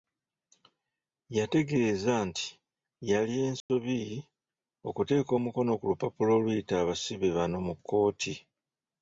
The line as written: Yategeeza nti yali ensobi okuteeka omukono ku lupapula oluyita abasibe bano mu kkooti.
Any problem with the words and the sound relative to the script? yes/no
yes